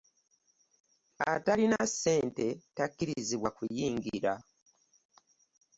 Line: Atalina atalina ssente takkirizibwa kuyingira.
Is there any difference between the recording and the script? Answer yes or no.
yes